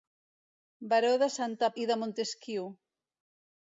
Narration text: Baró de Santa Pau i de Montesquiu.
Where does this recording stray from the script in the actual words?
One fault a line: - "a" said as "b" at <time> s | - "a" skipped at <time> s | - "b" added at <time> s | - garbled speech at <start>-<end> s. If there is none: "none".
- "Pau" skipped at 1.7 s